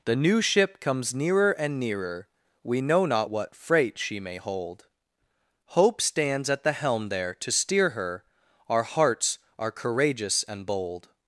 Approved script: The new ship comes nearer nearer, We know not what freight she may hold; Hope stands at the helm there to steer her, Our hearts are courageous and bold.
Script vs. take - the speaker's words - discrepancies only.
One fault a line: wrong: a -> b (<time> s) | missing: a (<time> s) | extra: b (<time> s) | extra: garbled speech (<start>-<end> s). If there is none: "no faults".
extra: and (1.5 s)